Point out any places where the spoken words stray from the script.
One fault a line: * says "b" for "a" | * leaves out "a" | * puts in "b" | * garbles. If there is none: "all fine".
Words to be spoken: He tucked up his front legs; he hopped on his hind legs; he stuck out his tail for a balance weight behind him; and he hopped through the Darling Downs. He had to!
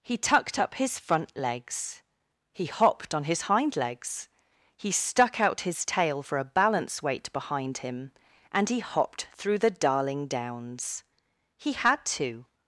all fine